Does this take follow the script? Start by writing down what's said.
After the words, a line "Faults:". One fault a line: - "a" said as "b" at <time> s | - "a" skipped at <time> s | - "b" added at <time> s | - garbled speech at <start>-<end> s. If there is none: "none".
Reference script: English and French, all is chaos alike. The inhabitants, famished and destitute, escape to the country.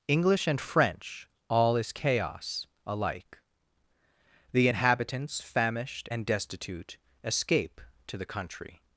English and French, all is chaos alike. The inhabitants, famished and destitute, escape to the country.
Faults:
none